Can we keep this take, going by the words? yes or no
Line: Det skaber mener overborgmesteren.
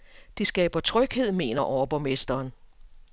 no